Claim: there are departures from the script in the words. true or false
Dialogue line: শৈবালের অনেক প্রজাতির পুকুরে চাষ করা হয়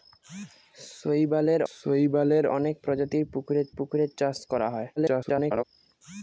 true